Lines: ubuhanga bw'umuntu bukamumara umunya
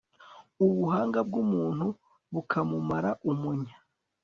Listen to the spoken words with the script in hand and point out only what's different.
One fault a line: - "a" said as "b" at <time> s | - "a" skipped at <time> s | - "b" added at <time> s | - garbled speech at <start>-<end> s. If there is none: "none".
none